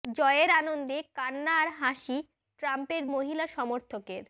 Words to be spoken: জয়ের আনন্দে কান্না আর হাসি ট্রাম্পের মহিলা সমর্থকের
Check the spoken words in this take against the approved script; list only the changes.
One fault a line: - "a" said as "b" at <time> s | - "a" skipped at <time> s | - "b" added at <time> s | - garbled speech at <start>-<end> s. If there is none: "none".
none